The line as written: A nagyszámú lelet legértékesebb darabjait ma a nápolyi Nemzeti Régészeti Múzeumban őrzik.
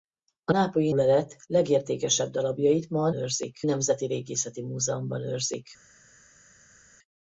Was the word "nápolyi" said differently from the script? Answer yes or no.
yes